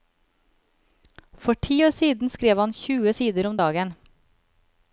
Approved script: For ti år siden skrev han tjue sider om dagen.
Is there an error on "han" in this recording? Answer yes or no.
no